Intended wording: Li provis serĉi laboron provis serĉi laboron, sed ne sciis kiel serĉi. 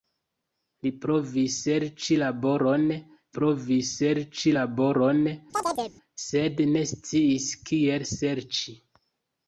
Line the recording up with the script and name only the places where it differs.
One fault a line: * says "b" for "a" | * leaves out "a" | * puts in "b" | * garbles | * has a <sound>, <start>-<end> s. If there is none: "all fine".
* has a chirp, 5.5-5.9 s